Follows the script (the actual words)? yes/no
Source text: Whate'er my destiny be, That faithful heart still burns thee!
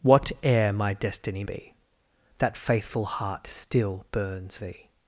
yes